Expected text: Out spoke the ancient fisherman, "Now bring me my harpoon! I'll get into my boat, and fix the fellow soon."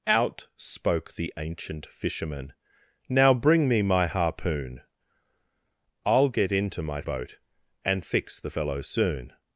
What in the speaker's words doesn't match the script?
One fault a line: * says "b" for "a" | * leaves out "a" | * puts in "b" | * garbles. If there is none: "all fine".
all fine